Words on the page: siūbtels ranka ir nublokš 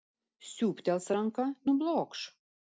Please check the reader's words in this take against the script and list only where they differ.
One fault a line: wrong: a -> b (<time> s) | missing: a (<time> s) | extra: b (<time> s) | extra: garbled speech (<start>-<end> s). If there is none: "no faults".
missing: ir (1.5 s)